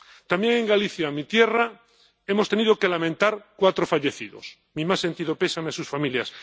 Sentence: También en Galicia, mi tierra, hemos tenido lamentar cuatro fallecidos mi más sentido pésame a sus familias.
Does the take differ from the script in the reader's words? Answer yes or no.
yes